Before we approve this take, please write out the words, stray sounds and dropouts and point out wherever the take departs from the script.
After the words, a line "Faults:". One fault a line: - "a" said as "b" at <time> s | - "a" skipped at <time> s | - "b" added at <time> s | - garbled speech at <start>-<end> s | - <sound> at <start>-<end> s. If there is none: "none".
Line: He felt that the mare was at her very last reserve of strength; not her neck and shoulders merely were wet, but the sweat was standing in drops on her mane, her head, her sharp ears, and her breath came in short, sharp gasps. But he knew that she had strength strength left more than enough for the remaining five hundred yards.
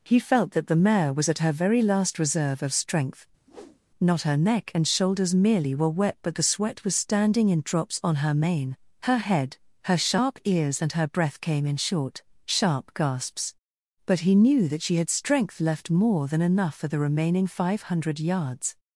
He felt that the mare was at her very last reserve of strength; not her neck and shoulders merely were wet, but the sweat was standing in drops on her mane, her head, her sharp ears, and her breath came in short, sharp gasps. But he knew that she had strength left more than enough for the remaining five hundred yards.
Faults:
- whoosh at 3.5-3.8 s
- "strength" skipped at 15.6 s